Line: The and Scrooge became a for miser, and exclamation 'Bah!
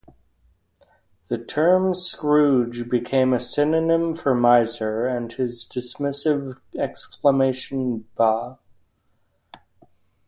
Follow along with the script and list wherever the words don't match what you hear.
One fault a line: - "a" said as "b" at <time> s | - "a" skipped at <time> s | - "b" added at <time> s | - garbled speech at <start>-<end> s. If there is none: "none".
- "and" said as "term" at 1.4 s
- "synonym" added at 3.4 s
- "his dismissive" added at 5.3 s